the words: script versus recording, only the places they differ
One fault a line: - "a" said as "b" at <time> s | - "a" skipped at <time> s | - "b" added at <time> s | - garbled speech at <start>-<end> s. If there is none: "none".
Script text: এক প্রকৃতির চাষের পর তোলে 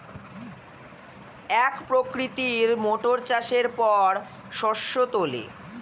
- "মোটর" added at 2.8 s
- "শস্য" added at 4.5 s